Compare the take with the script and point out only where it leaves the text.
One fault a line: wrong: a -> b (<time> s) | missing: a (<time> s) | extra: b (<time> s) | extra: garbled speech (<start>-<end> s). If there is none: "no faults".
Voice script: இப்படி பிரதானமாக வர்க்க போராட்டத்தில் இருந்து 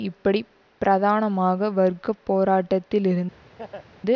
no faults